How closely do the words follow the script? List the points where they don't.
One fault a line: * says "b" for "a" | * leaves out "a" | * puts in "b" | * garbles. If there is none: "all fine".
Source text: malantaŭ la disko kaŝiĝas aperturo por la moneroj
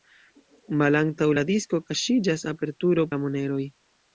* leaves out "por"